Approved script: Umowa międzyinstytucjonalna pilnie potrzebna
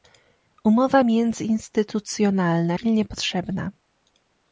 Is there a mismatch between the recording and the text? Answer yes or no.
no